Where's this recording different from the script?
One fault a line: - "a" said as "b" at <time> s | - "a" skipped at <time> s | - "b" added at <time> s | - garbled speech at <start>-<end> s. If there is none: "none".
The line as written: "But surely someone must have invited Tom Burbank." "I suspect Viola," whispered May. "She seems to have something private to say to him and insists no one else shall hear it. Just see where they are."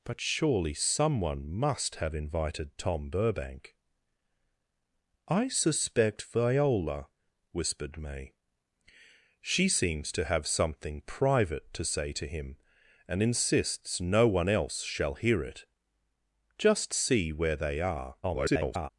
- garbled speech at 18.2-18.9 s